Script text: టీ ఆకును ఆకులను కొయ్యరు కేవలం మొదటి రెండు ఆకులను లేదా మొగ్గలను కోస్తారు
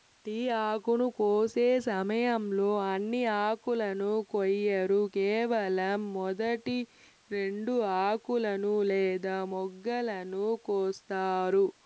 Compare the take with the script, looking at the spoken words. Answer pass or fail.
fail